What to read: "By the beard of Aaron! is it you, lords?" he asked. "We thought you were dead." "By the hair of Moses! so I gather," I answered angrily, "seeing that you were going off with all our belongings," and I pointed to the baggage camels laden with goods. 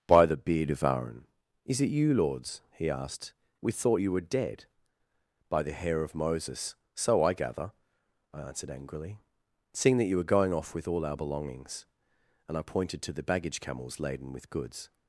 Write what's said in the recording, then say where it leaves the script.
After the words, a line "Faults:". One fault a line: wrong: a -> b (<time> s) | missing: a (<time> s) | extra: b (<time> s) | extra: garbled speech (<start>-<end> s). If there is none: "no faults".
"By the beard of Aaron! is it you, lords?" he asked. "We thought you were dead." "By the hair of Moses! so I gather," I answered angrily, "seeing that you were going off with all our belongings," and I pointed to the baggage camels laden with goods.
Faults:
no faults